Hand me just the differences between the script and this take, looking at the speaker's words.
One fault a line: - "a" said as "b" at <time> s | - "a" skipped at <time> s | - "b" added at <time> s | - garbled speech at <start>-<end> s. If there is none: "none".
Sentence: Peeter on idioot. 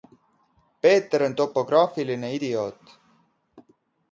- "topograafiline" added at 1.4 s